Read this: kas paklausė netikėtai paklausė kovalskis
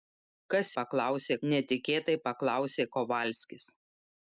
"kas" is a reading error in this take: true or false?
false